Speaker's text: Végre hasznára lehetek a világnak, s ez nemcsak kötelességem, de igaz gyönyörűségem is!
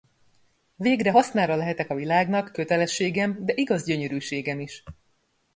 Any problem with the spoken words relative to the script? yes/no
yes